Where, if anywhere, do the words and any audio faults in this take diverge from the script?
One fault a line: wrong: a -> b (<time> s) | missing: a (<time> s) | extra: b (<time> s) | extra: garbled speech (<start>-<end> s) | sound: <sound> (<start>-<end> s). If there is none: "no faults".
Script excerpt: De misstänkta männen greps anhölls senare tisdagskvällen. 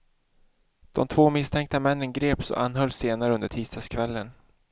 extra: två (1.1 s)
extra: och (2.5 s)
extra: under (3.3 s)